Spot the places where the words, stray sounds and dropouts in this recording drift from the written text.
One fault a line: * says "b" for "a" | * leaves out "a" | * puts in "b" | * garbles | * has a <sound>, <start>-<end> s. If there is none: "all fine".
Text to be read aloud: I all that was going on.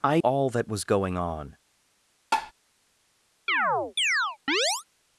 * has a tap, 2.3-2.5 s
* has a chirp, 3.5-4.8 s